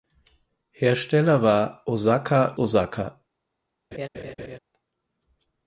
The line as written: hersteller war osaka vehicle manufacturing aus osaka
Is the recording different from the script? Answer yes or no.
yes